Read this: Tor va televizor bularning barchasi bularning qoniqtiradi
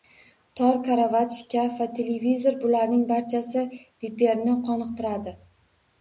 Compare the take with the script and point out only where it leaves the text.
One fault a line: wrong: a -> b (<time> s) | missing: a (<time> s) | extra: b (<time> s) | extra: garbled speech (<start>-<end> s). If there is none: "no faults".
extra: karavot shkaf (0.8 s)
wrong: bularning -> reperni (4.0 s)